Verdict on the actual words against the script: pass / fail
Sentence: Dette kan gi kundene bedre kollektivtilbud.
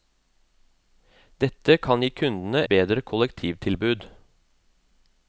pass